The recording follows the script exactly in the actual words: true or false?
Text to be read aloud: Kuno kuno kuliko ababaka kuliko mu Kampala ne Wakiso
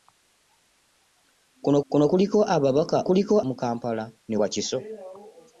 true